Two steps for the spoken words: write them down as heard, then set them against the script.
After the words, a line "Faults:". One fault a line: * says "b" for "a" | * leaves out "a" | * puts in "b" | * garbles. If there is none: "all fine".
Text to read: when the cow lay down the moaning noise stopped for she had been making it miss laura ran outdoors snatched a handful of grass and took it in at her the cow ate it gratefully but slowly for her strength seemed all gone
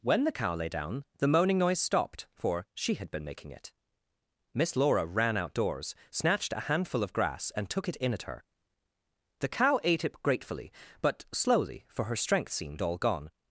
when the cow lay down the moaning noise stopped for she had been making it miss laura ran outdoors snatched a handful of grass and took it in at her the cow ate it gratefully but slowly for her strength seemed all gone
Faults:
all fine